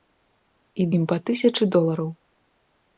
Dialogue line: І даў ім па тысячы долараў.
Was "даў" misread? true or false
true